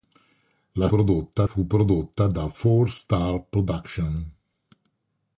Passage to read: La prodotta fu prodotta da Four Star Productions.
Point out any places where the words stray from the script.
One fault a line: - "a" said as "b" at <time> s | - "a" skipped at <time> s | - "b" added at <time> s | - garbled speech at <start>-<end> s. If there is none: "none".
none